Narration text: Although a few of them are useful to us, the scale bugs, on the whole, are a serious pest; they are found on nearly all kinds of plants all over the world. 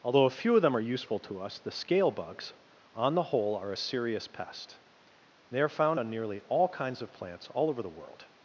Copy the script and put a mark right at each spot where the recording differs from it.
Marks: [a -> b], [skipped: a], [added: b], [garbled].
Although a few of them are useful to us, the scale bugs, on the whole, are a serious pest; they are found on nearly all kinds of plants all over the world.